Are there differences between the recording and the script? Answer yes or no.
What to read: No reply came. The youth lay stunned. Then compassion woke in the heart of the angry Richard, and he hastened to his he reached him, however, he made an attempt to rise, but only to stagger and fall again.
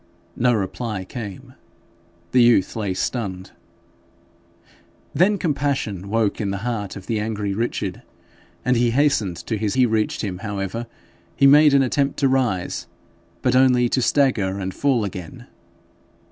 no